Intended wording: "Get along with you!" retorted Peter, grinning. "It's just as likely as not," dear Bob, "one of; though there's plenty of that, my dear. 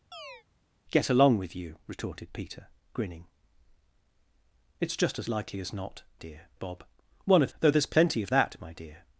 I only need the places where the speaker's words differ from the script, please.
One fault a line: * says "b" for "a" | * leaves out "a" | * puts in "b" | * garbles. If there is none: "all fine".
all fine